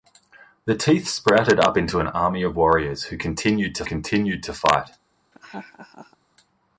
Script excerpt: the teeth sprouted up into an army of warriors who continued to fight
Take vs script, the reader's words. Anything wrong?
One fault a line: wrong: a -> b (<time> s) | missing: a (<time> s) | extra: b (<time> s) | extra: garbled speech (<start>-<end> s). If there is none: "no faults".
extra: continued to (3.9 s)